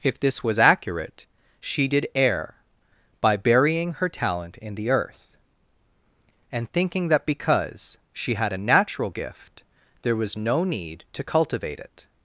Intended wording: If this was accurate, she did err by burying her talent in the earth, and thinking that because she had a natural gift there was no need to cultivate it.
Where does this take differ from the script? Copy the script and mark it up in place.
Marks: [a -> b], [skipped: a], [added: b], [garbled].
If this was accurate, she did err by burying her talent in the earth, and thinking that because she had a natural gift there was no need to cultivate it.